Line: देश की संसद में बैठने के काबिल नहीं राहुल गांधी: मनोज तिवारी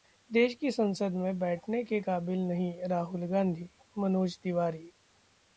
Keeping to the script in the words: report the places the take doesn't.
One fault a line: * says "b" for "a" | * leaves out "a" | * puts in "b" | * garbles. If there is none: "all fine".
all fine